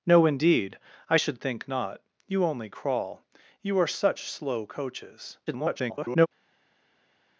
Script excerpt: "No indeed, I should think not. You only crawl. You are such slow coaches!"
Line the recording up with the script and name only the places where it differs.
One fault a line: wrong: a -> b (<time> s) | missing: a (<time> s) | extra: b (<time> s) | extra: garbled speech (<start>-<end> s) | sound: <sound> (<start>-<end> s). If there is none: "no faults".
extra: garbled speech (5.5-6.3 s)